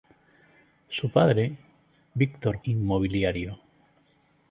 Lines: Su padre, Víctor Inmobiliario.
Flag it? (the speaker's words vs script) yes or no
no